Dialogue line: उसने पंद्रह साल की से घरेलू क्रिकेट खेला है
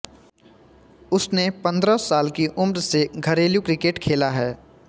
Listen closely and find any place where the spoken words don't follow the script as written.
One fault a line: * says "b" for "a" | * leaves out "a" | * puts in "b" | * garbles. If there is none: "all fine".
* puts in "उम्र"